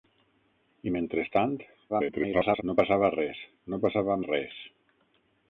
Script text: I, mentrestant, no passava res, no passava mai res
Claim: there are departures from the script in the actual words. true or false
true